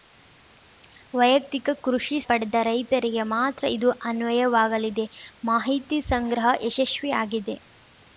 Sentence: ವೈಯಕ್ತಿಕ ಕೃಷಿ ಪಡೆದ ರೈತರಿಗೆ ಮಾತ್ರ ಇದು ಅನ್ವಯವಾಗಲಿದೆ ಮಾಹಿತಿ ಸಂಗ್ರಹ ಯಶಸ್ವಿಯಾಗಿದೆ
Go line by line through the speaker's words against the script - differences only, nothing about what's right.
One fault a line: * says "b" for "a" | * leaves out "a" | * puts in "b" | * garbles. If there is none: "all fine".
all fine